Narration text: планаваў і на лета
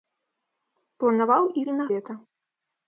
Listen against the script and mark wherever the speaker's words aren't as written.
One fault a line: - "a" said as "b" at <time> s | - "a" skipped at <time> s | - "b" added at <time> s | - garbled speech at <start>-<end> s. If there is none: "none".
none